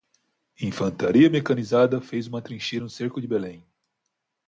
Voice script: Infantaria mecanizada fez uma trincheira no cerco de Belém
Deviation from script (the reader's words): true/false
false